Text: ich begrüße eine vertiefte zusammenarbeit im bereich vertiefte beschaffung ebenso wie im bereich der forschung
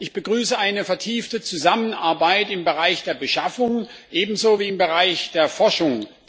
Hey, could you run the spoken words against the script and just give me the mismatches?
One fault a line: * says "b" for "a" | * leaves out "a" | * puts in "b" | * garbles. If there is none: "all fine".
* says "der" for "vertiefte"